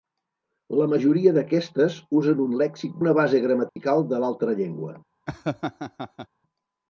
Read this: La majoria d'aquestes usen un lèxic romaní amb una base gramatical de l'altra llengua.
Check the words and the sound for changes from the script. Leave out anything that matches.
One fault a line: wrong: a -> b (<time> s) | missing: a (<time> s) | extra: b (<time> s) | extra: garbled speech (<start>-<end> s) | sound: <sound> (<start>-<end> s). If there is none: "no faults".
missing: romaní amb (3.0 s)
sound: dropout (3.7-3.8 s)
sound: laugh (5.3-6.3 s)